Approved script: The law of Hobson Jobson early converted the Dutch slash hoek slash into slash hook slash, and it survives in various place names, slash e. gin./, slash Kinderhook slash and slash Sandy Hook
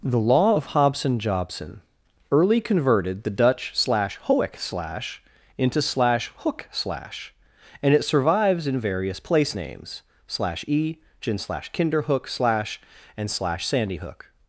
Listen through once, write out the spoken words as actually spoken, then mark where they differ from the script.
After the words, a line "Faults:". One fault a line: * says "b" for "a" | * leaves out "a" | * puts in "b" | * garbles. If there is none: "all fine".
The law of Hobson Jobson early converted the Dutch slash hoek slash into slash hook slash, and it survives in various place names, slash e. gin./, slash Kinderhook slash and slash Sandy Hook
Faults:
all fine